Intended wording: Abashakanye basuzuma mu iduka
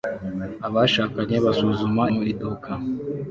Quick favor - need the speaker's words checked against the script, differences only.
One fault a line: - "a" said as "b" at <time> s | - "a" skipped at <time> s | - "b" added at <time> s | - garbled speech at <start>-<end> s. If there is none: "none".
none